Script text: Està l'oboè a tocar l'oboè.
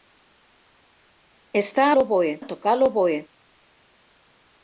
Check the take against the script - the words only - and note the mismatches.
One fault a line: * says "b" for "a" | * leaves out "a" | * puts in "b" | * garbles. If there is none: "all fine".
all fine